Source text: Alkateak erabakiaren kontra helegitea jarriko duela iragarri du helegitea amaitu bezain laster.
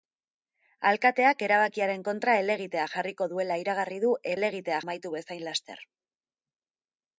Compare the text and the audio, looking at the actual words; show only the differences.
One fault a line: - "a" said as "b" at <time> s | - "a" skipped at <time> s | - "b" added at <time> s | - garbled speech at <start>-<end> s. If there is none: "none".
none